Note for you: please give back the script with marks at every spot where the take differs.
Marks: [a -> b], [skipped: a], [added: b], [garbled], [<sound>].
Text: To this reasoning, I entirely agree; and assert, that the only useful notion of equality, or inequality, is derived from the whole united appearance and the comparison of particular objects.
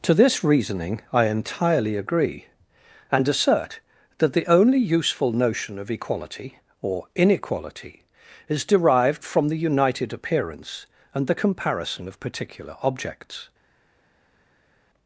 To this reasoning, I entirely agree; and assert, that the only useful notion of equality, or inequality, is derived from the [skipped: whole] united appearance and the comparison of particular objects.